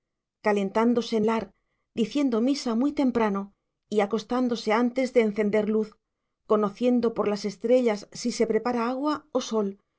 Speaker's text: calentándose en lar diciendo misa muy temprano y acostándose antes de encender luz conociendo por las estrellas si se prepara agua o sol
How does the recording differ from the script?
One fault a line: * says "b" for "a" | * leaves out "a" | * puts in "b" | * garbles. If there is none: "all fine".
all fine